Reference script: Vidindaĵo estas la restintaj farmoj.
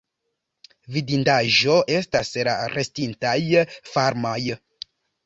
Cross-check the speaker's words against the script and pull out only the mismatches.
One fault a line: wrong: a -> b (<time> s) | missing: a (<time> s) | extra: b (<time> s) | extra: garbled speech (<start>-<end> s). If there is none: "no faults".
no faults